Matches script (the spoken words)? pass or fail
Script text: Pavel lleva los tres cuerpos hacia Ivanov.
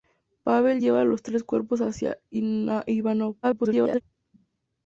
fail